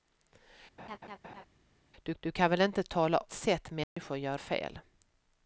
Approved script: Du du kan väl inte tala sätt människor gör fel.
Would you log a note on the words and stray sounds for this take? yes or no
yes